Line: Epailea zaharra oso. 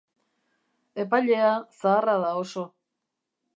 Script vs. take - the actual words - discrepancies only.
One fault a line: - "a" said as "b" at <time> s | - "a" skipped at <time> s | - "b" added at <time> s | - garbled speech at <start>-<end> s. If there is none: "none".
- "da" added at 2.2 s